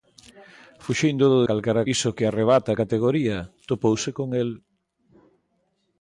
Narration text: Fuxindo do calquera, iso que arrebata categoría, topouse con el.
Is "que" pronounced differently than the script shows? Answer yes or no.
no